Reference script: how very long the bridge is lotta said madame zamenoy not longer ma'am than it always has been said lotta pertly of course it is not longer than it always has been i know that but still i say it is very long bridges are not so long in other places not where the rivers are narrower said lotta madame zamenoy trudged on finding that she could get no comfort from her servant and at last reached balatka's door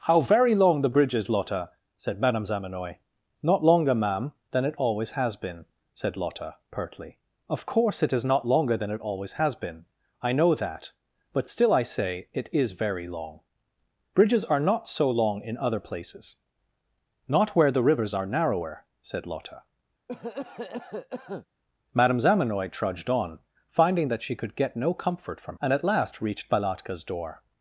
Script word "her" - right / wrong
wrong